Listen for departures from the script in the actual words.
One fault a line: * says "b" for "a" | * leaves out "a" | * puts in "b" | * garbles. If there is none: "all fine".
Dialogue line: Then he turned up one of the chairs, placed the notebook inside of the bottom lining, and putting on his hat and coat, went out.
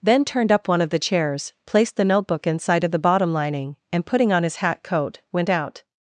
* leaves out "he"
* leaves out "and"